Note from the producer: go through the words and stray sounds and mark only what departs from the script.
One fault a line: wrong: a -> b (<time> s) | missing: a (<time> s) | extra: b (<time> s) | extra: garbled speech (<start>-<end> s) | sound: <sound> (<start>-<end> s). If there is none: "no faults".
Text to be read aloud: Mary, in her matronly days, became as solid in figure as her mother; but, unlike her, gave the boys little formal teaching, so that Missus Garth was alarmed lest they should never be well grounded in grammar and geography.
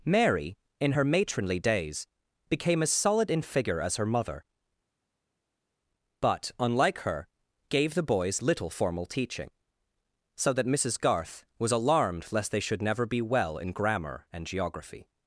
missing: grounded (13.6 s)